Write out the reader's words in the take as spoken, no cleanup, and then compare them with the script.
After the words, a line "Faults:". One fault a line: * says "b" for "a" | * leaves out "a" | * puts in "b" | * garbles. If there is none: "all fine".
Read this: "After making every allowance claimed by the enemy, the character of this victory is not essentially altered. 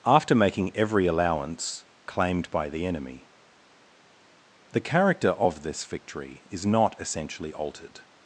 "After making every allowance claimed by the enemy, the character of this victory is not essentially altered.
Faults:
all fine